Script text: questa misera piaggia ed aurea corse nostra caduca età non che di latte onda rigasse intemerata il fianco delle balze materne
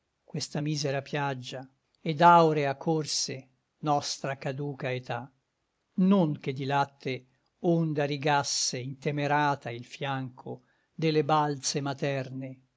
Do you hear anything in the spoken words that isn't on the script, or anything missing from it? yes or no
no